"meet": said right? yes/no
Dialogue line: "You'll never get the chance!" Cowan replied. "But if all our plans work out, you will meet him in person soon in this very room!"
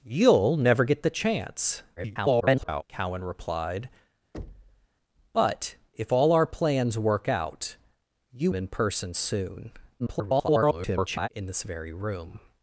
no